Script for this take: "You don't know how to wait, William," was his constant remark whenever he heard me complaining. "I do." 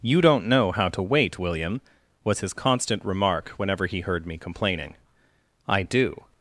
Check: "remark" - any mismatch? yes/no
no